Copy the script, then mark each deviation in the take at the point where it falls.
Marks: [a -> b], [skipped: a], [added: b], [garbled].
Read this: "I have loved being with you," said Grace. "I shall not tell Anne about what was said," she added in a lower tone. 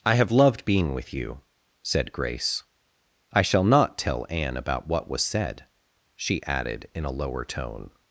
"I have loved being with you," said Grace. "I shall not tell Anne about what was said," she added in a lower tone.